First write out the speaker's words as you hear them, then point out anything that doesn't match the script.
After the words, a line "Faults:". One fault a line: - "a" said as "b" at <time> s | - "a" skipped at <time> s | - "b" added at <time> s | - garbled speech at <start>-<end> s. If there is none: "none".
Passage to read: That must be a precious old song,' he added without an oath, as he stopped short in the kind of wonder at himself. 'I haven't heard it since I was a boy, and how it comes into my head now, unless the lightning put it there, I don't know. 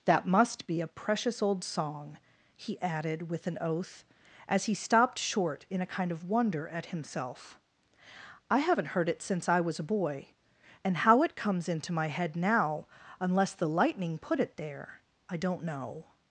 That must be a precious old song,' he added with an oath, as he stopped short in a kind of wonder at himself. 'I haven't heard it since I was a boy, and how it comes into my head now, unless the lightning put it there, I don't know.
Faults:
- "without" said as "with" at 3.3 s
- "the" said as "a" at 5.8 s